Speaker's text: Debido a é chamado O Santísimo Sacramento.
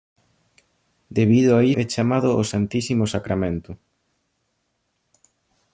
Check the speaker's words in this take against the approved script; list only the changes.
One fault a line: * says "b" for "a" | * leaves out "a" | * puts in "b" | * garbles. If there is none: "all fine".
all fine